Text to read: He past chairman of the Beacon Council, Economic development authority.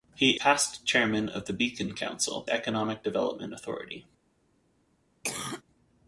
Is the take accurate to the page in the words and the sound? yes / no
no